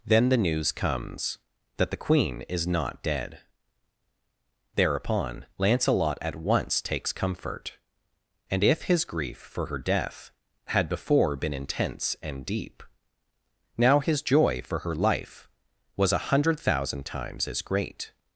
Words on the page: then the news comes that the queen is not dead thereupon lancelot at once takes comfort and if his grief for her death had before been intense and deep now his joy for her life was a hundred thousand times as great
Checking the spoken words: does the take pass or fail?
pass